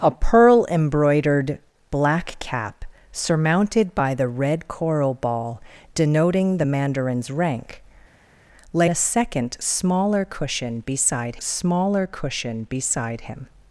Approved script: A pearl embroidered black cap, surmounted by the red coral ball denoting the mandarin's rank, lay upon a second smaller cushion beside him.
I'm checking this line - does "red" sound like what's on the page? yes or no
yes